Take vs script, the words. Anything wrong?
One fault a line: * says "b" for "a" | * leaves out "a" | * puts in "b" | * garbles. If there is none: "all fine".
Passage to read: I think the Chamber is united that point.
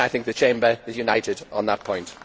* puts in "on"